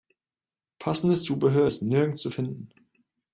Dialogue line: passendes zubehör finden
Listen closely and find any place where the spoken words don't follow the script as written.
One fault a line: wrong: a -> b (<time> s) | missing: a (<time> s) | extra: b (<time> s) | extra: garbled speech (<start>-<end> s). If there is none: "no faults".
extra: ist nirgends zu (1.6 s)